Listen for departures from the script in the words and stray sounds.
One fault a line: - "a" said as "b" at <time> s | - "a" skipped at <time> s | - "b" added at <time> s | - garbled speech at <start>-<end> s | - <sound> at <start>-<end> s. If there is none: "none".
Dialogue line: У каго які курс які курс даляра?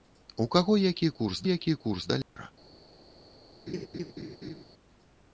- dropout at 2.2-2.4 s
- laugh at 3.7-4.6 s